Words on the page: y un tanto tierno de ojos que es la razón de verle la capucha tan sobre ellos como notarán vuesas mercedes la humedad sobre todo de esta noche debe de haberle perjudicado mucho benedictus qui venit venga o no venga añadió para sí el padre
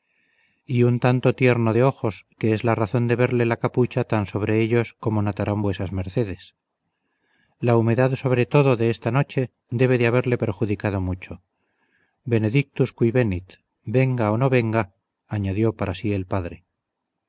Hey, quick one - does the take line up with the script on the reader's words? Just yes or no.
yes